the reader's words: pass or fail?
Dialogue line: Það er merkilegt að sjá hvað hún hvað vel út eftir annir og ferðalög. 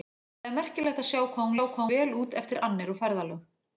pass